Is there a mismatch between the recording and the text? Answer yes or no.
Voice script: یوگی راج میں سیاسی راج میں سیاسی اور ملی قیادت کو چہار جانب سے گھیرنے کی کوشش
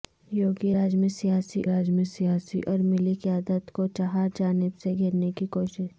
no